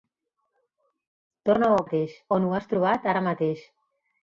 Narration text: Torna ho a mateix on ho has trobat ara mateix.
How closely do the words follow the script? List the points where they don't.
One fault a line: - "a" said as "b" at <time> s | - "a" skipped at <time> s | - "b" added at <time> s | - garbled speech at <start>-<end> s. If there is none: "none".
none